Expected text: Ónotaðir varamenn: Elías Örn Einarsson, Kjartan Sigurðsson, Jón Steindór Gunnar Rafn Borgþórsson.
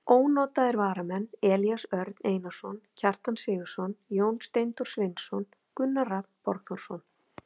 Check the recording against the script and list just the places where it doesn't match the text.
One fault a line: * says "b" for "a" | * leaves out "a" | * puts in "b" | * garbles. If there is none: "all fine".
* puts in "Sveinsson"